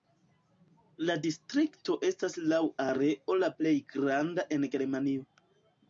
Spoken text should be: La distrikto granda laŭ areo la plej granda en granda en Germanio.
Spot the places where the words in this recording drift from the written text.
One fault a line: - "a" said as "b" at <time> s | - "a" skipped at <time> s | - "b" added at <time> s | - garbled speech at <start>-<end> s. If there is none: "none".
- "granda" said as "estas" at 2.1 s
- "granda en" skipped at 4.7 s